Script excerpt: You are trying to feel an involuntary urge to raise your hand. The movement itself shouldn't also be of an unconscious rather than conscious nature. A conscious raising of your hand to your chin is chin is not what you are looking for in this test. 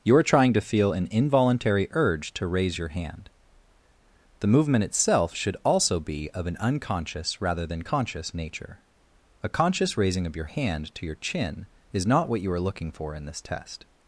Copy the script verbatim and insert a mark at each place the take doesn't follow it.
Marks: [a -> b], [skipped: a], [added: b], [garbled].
You are trying to feel an involuntary urge to raise your hand. The movement itself [shouldn't -> should] also be of an unconscious rather than conscious nature. A conscious raising of your hand to your chin is [skipped: chin is] not what you are looking for in this test.